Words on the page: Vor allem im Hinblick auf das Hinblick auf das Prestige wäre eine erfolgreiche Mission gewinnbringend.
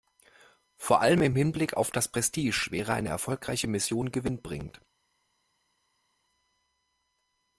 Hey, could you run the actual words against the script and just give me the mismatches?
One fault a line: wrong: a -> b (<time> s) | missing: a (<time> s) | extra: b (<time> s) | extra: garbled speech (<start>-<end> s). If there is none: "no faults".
missing: Hinblick auf das (2.1 s)